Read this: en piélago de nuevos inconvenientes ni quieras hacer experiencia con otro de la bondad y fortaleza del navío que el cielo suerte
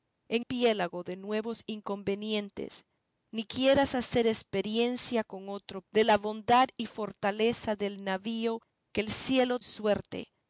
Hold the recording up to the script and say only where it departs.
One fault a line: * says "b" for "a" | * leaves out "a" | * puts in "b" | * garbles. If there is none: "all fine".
all fine